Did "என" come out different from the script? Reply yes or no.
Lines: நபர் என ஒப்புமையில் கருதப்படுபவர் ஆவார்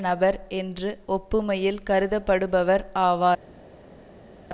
yes